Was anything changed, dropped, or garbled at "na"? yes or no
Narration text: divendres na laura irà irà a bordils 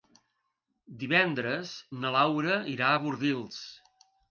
no